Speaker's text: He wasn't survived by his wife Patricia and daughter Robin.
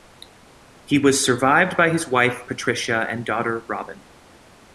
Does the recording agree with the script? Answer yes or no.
no